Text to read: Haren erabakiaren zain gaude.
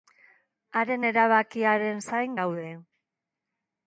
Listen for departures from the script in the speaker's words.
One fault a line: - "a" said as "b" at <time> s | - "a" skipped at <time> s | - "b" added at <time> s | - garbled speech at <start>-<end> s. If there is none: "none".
none